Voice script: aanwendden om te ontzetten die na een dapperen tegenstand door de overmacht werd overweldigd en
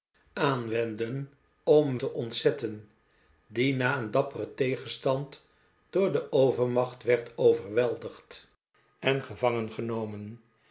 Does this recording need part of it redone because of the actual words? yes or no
no